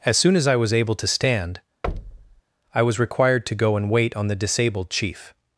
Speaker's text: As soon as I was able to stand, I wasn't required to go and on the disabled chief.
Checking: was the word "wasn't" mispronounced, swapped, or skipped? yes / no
yes